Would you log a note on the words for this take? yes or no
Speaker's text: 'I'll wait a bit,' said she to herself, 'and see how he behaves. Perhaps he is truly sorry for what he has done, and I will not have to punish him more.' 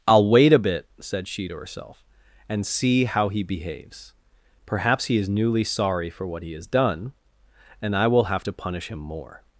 yes